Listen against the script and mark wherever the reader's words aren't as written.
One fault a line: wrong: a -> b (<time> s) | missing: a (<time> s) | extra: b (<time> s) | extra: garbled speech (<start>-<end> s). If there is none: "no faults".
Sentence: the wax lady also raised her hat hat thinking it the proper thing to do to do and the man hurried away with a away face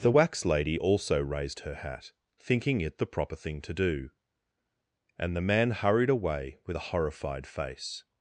missing: hat (2.1 s)
missing: to do (4.1 s)
wrong: away -> horrified (6.9 s)